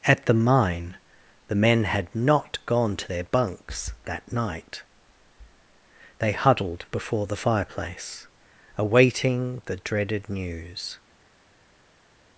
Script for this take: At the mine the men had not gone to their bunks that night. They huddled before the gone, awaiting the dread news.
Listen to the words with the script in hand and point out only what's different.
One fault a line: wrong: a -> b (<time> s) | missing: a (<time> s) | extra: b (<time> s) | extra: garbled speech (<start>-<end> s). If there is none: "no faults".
wrong: gone -> fireplace (7.4 s)
wrong: dread -> dreaded (9.8 s)